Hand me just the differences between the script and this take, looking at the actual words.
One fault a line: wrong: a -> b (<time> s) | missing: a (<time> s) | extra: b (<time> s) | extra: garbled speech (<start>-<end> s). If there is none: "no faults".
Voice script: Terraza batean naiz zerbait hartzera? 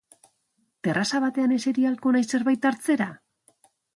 extra: eseri ahalko (1.6 s)